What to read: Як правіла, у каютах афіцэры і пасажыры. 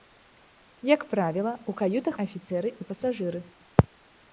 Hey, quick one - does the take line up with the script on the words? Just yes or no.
yes